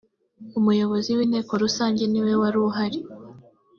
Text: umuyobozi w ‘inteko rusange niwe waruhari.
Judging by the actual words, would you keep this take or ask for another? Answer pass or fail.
pass